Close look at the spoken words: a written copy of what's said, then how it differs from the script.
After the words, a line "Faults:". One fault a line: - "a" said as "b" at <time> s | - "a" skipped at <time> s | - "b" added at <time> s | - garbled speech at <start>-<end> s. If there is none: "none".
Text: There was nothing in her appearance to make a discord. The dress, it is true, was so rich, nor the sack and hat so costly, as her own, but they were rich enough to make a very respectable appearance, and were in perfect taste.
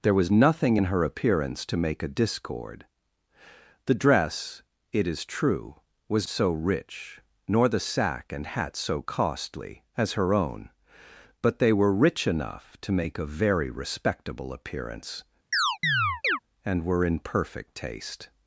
There was nothing in her appearance to make a discord. The dress, it is true, was so rich, nor the sack and hat so costly, as her own, but they were rich enough to make a very respectable appearance, and were in perfect taste.
Faults:
none